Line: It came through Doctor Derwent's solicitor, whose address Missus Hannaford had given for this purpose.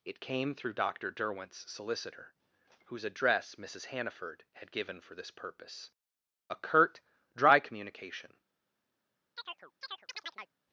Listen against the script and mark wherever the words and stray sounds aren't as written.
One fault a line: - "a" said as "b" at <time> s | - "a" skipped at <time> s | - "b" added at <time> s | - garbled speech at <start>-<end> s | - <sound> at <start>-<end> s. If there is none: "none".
- "A curt dry communication" added at 6.5 s
- chirp at 9.4-10.5 s